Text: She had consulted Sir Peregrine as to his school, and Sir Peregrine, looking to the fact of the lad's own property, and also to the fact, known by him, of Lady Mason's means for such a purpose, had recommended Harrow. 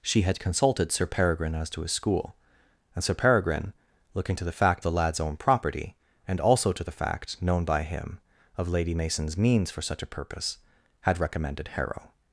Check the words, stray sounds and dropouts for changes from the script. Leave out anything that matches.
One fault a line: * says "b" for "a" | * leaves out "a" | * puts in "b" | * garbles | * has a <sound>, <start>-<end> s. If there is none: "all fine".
* leaves out "of"